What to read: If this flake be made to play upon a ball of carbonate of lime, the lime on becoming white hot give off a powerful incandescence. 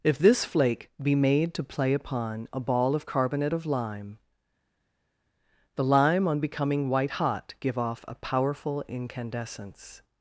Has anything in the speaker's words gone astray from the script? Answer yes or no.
no